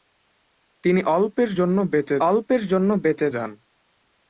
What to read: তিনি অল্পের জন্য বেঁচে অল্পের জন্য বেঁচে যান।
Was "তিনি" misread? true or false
false